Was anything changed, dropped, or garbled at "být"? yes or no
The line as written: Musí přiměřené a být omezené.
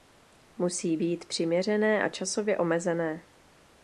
yes